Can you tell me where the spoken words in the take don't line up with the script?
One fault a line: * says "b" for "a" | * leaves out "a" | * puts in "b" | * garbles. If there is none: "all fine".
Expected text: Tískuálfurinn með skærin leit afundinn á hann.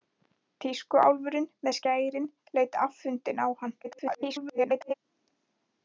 * garbles